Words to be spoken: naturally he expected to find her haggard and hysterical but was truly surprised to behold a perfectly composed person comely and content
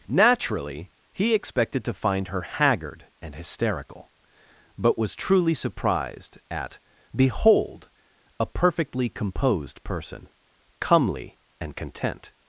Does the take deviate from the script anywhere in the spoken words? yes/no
yes